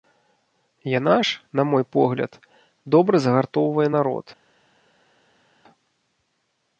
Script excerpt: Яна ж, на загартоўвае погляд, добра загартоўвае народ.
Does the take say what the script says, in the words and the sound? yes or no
no